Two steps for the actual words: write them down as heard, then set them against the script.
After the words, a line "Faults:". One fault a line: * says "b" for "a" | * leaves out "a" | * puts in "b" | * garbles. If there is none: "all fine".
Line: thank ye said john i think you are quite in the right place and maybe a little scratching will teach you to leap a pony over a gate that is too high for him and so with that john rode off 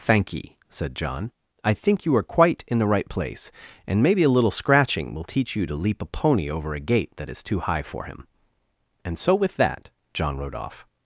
thank ye said john i think you are quite in the right place and maybe a little scratching will teach you to leap a pony over a gate that is too high for him and so with that john rode off
Faults:
all fine